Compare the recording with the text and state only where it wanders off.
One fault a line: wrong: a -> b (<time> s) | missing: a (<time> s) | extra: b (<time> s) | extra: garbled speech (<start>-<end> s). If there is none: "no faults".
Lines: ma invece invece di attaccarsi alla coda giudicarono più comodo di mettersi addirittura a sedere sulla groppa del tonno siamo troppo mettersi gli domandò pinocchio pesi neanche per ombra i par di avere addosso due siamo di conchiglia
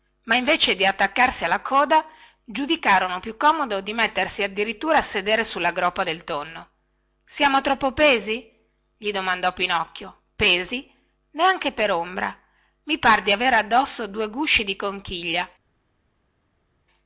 missing: invece (0.8 s)
wrong: mettersi -> pesi (7.9 s)
wrong: siamo -> gusci (14.3 s)